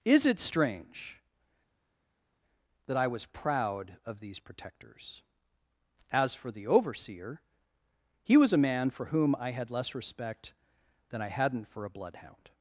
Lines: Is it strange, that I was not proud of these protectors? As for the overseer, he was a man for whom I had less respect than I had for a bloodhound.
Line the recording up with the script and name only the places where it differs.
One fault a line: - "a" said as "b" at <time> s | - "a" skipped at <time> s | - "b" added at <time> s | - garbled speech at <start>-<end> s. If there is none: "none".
- "not" skipped at 3.3 s
- "had" said as "hadn't" at 11.3 s